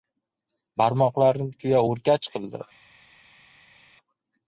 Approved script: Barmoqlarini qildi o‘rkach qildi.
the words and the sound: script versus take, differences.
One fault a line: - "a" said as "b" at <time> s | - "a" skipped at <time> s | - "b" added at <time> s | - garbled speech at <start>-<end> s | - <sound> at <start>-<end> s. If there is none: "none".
- "qildi" said as "tuya" at 1.6 s